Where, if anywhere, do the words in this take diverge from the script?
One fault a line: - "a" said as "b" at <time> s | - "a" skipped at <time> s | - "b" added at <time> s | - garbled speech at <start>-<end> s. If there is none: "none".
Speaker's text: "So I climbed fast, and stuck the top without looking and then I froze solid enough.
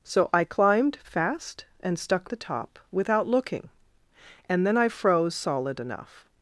none